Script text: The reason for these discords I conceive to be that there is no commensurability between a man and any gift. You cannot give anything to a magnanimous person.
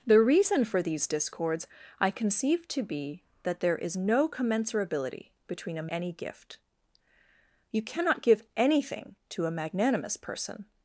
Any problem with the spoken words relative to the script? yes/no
yes